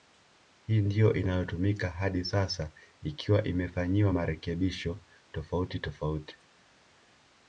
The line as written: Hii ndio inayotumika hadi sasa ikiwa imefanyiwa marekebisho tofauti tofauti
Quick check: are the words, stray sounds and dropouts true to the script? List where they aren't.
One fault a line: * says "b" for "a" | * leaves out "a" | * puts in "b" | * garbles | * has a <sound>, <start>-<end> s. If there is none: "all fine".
all fine